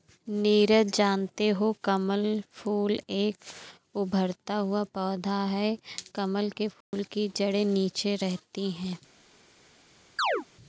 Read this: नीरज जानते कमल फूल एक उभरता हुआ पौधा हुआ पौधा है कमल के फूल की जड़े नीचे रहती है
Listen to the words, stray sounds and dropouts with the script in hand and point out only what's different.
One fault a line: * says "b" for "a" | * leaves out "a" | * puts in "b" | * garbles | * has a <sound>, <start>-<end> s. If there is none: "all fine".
* puts in "हो"
* leaves out "हुआ पौधा"
* has a dropout, 6.8-6.9 s
* has a chirp, 10.2-10.5 s